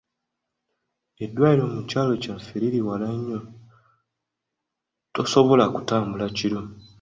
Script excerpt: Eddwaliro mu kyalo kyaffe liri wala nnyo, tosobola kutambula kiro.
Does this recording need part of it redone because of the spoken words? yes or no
no